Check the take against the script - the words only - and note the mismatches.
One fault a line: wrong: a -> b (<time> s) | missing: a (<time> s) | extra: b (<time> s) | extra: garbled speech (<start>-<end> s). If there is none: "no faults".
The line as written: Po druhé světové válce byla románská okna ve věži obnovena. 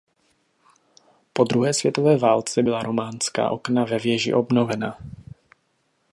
no faults